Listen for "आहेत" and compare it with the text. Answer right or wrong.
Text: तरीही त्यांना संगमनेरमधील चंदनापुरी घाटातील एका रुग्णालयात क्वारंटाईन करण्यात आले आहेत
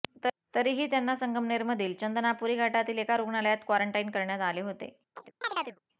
wrong